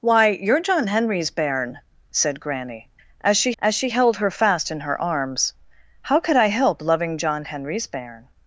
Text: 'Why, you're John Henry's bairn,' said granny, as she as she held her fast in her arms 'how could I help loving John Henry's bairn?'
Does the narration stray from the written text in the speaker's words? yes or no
no